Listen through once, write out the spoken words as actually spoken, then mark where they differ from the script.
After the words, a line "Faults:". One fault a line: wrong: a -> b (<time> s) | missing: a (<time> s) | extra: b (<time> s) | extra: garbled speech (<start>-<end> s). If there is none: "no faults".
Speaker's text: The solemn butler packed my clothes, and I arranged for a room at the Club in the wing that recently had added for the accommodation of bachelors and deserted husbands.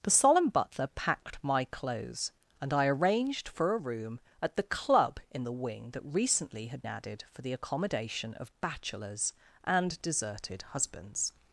The solemn butler packed my clothes, and I arranged for a room at the Club in the wing that recently had added for the accommodation of bachelors and deserted husbands.
Faults:
no faults